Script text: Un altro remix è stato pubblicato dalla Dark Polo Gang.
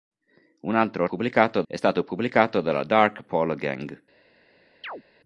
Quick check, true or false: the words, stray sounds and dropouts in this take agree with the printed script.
false